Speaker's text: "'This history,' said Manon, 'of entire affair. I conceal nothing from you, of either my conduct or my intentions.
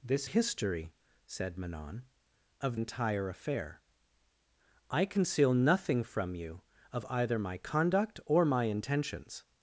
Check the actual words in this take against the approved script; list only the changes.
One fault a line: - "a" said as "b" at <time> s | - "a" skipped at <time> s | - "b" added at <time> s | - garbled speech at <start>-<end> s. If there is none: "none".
none